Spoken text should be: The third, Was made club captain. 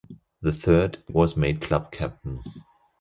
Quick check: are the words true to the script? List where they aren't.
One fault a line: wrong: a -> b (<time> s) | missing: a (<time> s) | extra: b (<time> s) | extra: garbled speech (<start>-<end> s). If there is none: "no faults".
no faults